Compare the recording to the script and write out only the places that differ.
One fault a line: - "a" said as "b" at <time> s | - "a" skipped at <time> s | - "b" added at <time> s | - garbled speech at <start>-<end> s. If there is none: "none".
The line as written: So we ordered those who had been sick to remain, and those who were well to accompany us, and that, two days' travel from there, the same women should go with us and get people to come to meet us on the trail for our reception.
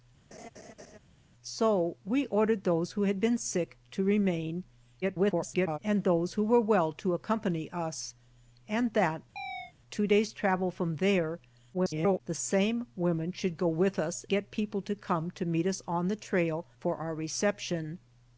- garbled speech at 5.0-5.8 s
- garbled speech at 11.7-12.2 s
- "and" skipped at 14.2 s